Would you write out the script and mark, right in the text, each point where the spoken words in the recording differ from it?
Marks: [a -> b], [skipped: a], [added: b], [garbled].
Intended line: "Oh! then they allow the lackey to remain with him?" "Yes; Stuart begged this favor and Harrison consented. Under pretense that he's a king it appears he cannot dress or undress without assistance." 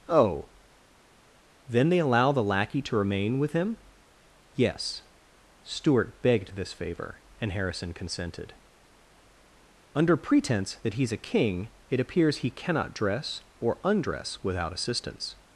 "Oh! then they allow the lackey to remain with him?" "Yes; Stuart begged this favor and Harrison consented. Under pretense that he's a king it appears he cannot dress or undress without assistance."